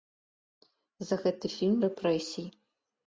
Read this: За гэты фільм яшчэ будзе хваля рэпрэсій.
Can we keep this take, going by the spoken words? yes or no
no